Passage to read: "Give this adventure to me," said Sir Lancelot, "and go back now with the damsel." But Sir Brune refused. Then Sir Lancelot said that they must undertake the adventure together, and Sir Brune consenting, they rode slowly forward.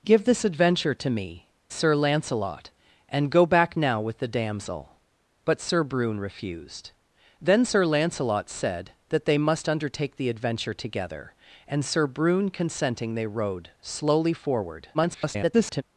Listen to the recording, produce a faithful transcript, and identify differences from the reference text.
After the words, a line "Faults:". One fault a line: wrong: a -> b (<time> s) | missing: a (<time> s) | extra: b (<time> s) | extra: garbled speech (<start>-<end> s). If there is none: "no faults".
"Give this adventure to me," Sir Lancelot, "and go back now with the damsel." But Sir Brune refused. Then Sir Lancelot said that they must undertake the adventure together, and Sir Brune consenting, they rode slowly forward. [garbled]
Faults:
missing: said (1.5 s)
extra: garbled speech (14.9-15.8 s)